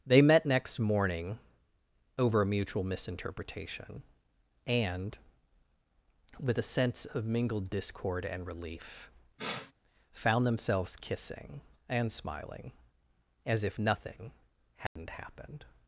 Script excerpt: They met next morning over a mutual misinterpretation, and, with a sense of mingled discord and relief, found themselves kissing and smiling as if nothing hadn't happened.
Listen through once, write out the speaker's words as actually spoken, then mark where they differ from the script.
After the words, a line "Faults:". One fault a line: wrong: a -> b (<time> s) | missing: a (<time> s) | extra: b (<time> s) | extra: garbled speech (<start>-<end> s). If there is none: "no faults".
They met next morning over a mutual misinterpretation, and, with a sense of mingled discord and relief, found themselves kissing and smiling as if nothing hadn't happened.
Faults:
no faults